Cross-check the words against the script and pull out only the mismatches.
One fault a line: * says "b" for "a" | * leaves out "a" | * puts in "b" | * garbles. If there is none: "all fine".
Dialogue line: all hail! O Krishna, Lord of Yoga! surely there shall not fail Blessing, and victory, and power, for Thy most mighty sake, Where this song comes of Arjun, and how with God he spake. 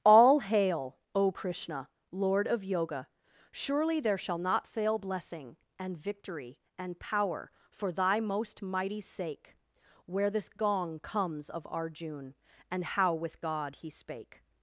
* says "gong" for "song"